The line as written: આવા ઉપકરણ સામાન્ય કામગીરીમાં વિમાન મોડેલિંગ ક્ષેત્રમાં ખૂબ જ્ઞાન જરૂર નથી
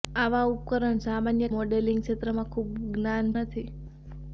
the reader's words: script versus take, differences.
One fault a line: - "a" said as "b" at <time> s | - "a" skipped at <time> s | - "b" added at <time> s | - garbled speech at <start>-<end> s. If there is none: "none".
- "કામગીરીમાં વિમાન" skipped at 1.5 s
- "જરૂર" skipped at 3.3 s